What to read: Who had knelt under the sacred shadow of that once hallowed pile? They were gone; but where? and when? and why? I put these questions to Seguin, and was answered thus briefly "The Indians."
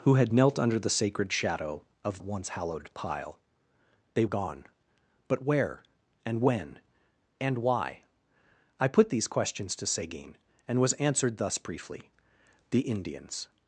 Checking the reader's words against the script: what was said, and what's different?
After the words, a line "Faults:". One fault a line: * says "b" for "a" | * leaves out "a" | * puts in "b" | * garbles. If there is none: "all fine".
Who had knelt under the sacred shadow of once hallowed pile? They gone; but where? and when? and why? I put these questions to Seguin, and was answered thus briefly "The Indians."
Faults:
* leaves out "that"
* leaves out "were"